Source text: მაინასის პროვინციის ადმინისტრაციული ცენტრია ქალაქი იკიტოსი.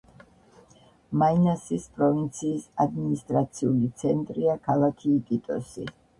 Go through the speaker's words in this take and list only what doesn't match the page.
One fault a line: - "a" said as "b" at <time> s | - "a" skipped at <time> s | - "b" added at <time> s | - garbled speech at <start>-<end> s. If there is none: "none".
none